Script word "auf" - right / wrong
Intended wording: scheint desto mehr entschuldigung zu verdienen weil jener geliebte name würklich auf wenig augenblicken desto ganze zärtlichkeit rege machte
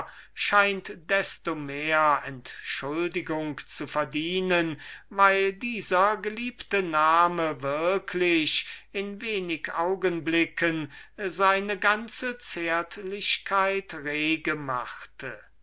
wrong